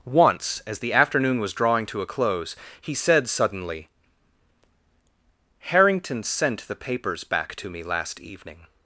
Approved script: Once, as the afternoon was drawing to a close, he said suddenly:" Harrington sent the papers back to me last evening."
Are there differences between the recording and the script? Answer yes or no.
no